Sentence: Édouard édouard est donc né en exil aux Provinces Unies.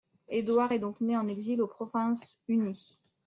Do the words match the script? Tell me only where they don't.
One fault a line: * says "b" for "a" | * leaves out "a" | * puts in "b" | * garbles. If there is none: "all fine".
* leaves out "édouard"